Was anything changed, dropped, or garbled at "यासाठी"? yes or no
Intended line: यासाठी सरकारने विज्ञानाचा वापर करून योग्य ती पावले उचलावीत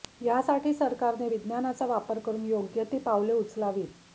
no